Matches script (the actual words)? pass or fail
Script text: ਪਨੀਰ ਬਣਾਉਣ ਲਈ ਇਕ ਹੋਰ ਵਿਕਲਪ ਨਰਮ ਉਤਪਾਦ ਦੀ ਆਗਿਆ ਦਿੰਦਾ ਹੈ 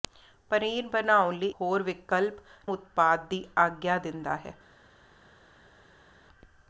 fail